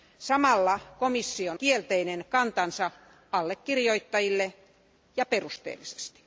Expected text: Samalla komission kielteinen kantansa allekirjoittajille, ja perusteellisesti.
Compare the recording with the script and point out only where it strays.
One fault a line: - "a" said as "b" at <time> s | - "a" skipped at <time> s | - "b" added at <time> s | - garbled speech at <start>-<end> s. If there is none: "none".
none